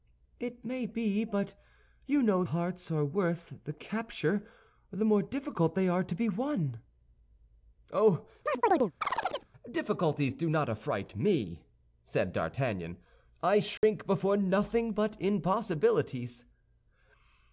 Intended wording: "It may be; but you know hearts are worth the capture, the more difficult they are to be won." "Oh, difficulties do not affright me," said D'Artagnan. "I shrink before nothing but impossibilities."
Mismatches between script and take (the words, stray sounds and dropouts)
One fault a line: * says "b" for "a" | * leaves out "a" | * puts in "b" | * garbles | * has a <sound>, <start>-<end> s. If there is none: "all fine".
* has a chirp, 8.5-9.5 s
* has a dropout, 13.8-13.8 s